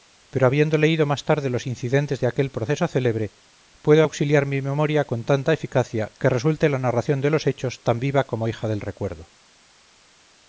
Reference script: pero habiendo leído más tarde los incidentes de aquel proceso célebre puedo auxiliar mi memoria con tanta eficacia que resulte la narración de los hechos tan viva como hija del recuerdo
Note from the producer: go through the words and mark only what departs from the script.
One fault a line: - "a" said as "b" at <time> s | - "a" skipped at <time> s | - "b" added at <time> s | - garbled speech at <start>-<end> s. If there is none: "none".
none